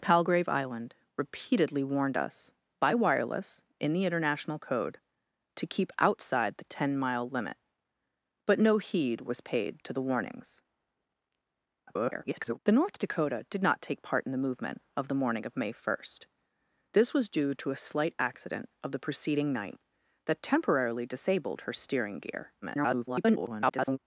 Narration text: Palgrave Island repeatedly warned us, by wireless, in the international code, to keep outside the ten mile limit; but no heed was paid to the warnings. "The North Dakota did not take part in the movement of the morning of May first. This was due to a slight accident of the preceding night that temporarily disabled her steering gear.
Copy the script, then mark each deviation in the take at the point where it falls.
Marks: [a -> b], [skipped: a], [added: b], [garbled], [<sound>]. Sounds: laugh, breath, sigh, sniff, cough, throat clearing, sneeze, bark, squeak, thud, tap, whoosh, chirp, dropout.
Palgrave Island repeatedly warned us, by wireless, in the international code, to keep outside the ten mile limit; but no heed was paid to the warnings. [garbled] "The North Dakota did not take part in the movement of the morning of May first. This was due to a slight accident of the preceding night that temporarily disabled her steering gear. [garbled]